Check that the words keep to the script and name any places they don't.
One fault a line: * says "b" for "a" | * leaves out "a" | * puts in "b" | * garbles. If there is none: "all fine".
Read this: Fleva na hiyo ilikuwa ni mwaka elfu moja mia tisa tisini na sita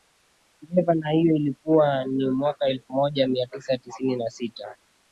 all fine